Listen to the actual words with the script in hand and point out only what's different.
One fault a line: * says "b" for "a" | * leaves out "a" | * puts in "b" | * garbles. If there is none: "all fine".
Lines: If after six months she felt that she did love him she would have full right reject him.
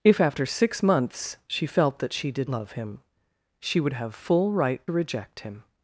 all fine